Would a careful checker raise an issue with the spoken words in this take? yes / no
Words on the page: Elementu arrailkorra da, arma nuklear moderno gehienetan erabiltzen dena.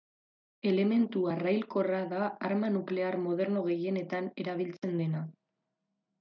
no